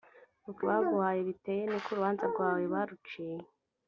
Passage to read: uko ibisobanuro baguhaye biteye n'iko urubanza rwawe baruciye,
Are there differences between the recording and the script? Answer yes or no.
yes